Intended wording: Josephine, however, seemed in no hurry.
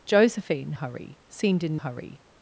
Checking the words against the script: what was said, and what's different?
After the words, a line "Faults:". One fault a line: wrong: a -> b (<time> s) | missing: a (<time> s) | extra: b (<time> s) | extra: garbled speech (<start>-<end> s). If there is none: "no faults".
Josephine, hurry, seemed in hurry.
Faults:
wrong: however -> hurry (0.7 s)
missing: no (1.8 s)